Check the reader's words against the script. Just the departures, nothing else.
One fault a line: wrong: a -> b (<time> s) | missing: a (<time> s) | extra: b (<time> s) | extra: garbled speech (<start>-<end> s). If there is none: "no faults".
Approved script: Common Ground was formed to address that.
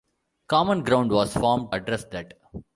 missing: to (1.8 s)